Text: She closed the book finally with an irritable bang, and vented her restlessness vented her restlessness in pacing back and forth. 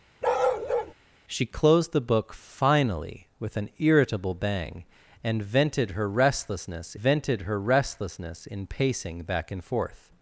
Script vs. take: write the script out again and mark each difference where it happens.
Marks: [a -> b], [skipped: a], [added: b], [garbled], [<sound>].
[bark] She closed the book finally with an irritable bang, and vented her restlessness vented her restlessness in pacing back and forth.